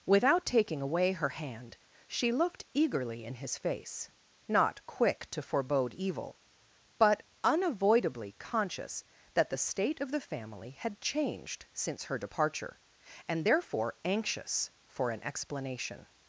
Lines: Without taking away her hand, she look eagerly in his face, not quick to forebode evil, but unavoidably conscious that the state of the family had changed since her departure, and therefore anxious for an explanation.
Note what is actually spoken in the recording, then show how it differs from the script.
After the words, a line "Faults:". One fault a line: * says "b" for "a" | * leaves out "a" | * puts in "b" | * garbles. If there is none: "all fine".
Without taking away her hand, she looked eagerly in his face, not quick to forebode evil, but unavoidably conscious that the state of the family had changed since her departure, and therefore anxious for an explanation.
Faults:
* says "looked" for "look"